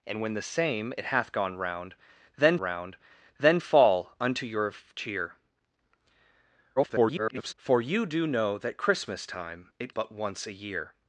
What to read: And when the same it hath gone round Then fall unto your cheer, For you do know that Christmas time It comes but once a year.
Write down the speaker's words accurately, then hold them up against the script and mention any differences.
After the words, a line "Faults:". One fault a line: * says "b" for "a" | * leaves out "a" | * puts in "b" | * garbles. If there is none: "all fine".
And when the same it hath gone round Then round Then fall unto your cheer, [garbled] For you do know that Christmas time It but once a year.
Faults:
* puts in "round Then"
* garbles
* leaves out "comes"